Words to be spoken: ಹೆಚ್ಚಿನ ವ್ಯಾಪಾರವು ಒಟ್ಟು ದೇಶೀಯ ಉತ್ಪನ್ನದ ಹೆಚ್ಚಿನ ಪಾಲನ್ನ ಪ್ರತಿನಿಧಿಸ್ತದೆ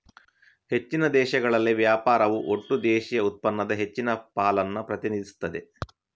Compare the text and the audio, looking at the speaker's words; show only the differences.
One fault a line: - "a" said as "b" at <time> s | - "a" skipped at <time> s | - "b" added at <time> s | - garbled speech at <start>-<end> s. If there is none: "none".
- "ದೇಶಗಳಲ್ಲಿ" added at 1.1 s